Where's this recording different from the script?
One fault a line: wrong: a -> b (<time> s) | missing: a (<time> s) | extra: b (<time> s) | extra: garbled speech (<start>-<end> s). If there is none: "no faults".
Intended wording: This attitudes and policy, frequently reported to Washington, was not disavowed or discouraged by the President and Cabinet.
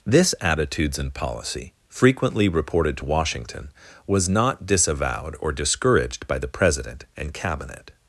no faults